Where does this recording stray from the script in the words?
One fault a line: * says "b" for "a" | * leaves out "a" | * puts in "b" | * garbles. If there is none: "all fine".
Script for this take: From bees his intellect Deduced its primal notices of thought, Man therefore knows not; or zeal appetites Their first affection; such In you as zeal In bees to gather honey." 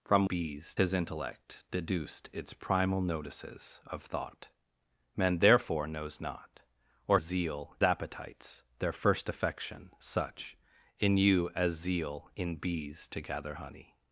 all fine